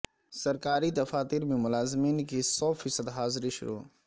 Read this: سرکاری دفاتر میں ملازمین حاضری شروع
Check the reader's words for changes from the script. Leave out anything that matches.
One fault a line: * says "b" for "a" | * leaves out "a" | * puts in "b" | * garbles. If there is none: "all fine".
* puts in "کی سو فیصد"